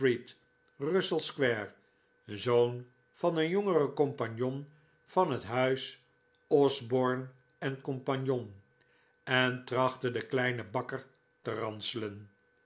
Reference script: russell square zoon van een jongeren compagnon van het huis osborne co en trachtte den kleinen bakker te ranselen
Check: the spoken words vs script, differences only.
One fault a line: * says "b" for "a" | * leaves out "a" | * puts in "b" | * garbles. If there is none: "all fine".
all fine